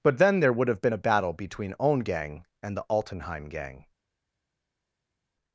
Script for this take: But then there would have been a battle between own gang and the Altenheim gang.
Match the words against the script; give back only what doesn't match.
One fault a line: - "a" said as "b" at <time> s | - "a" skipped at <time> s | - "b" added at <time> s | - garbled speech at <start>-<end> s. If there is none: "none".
none